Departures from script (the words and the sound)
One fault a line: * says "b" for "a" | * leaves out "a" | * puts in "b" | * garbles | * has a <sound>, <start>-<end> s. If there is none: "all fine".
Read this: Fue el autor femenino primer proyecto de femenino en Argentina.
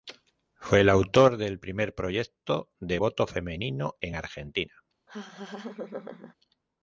* says "del" for "femenino"
* puts in "voto"
* has a laugh, 5.1-6.3 s